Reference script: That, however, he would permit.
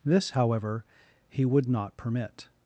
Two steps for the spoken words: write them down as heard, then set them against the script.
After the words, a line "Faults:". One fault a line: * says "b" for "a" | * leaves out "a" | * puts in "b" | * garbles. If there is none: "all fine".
This, however, he would not permit.
Faults:
* says "This" for "That"
* puts in "not"